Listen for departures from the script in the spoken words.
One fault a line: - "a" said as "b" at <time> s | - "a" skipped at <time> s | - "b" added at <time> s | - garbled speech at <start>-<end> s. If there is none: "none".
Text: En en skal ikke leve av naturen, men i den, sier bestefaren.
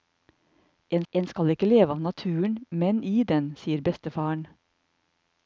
none